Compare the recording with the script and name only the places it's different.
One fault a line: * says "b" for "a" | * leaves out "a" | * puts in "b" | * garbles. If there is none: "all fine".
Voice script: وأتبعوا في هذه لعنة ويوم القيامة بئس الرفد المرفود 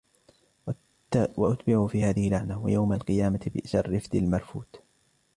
all fine